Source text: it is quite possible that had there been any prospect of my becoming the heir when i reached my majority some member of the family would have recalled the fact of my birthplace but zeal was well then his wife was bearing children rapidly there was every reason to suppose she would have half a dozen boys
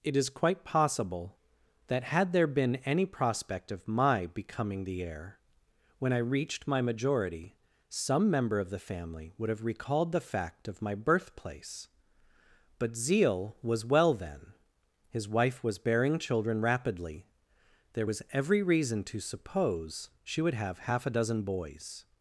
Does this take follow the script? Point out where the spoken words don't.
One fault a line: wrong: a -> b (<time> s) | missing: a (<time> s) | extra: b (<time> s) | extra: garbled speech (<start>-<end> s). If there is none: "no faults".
no faults